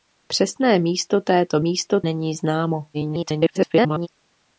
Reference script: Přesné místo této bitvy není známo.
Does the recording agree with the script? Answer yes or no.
no